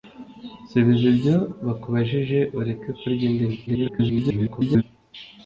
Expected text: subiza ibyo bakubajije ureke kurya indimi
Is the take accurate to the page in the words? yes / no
no